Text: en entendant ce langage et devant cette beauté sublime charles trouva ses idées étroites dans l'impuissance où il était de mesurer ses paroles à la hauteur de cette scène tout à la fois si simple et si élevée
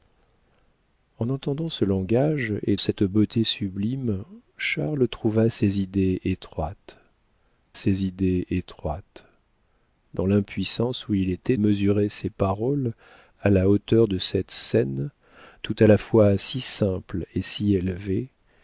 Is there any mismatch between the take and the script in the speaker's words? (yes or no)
yes